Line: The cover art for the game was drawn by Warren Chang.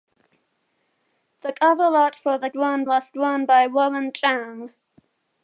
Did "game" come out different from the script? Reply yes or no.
yes